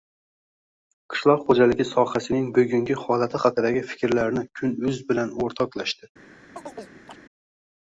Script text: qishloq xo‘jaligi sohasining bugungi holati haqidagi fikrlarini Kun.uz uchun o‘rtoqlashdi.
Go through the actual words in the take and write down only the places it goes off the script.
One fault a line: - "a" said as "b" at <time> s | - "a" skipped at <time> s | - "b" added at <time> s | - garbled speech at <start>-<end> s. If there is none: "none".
- "uchun" said as "bilan" at 5.1 s